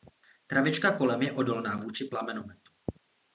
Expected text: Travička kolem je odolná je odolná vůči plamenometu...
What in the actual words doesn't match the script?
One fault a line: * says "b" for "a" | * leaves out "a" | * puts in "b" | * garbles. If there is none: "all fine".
* leaves out "je odolná"